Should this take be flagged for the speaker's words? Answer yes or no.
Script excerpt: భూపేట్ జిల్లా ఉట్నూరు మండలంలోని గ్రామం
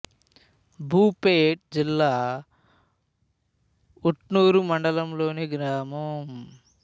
no